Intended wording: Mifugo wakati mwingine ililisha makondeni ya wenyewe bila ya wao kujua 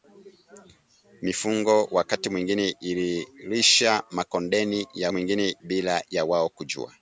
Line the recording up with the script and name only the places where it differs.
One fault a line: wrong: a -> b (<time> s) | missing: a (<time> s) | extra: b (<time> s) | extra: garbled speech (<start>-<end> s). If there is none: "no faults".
wrong: wenyewe -> mwingine (5.1 s)